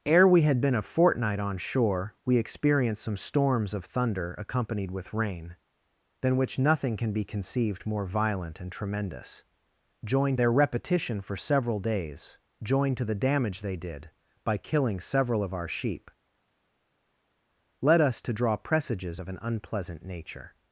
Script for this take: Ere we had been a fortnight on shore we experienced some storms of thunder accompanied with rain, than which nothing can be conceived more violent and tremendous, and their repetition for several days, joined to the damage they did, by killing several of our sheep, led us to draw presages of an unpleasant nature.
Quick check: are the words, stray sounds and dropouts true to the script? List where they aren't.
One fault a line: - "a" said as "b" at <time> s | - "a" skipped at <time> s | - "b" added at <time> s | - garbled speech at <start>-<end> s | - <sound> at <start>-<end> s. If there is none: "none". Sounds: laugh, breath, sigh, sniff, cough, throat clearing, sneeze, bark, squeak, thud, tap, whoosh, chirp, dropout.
- "and" said as "joined" at 10.0 s